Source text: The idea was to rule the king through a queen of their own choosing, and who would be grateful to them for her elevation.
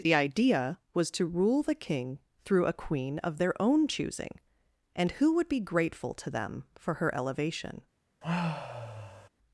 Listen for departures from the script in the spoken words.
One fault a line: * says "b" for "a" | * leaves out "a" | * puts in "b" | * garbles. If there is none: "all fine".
all fine